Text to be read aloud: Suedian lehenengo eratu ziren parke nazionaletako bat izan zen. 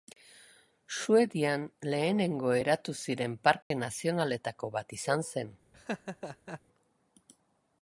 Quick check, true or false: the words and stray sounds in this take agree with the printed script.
false